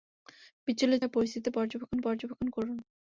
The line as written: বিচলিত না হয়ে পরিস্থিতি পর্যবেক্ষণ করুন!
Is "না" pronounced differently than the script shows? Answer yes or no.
yes